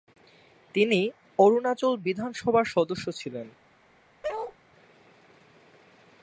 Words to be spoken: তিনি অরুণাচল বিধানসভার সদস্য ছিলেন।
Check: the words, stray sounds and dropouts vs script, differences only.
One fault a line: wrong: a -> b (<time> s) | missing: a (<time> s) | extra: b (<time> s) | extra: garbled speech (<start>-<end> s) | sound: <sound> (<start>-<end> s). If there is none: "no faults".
sound: bark (4.2-4.6 s)